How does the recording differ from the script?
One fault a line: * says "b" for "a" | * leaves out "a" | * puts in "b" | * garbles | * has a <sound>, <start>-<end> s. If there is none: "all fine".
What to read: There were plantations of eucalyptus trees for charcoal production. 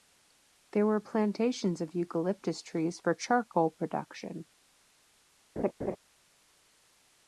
* has a laugh, 5.6-6.0 s